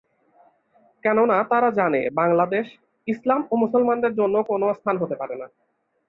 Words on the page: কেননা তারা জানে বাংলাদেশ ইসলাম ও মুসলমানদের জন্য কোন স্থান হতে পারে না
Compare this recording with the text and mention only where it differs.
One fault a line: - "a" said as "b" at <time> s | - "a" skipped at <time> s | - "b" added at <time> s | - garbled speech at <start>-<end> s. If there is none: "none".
none